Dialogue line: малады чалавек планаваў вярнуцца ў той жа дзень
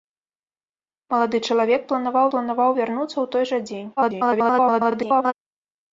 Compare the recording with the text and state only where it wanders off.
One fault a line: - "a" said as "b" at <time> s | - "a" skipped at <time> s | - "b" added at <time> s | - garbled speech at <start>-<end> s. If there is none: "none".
- "планаваў" added at 2.3 s
- garbled speech at 4.0-5.3 s